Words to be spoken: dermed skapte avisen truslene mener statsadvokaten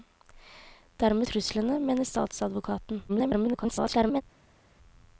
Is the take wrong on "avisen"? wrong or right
wrong